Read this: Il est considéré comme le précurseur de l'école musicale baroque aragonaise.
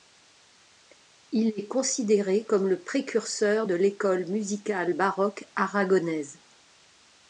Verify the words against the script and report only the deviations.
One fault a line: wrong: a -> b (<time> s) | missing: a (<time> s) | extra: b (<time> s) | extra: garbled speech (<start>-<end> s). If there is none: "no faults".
no faults